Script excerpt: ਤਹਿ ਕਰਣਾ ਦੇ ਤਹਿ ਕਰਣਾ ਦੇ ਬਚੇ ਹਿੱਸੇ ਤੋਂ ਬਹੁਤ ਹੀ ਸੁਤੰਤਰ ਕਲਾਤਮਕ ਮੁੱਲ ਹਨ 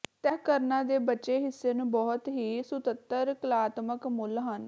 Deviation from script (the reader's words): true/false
true